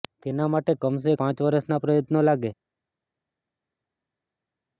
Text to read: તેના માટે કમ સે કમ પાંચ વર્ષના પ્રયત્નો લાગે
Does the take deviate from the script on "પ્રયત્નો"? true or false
false